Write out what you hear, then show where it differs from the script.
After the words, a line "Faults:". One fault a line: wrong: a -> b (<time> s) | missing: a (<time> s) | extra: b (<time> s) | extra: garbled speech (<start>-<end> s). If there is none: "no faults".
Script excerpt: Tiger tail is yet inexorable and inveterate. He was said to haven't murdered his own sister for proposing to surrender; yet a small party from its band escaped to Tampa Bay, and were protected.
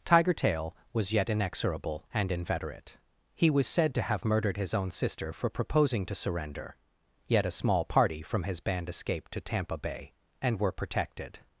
Tiger tail was yet inexorable and inveterate. He was said to have murdered his own sister for proposing to surrender; yet a small party from his band escaped to Tampa Bay, and were protected.
Faults:
wrong: is -> was (0.9 s)
wrong: haven't -> have (4.0 s)
wrong: its -> his (8.4 s)